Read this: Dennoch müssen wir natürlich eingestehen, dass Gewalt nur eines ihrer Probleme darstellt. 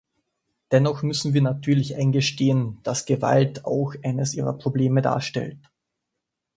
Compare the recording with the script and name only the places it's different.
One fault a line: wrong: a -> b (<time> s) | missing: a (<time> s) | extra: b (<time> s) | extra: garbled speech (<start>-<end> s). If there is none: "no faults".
wrong: nur -> auch (3.6 s)